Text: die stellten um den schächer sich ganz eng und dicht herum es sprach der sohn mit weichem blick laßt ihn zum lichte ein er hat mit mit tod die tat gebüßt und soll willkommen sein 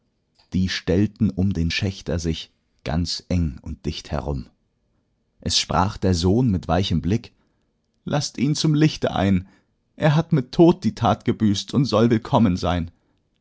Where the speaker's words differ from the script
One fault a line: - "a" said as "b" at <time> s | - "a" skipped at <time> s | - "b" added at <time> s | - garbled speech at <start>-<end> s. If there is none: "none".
- "mit" skipped at 10.5 s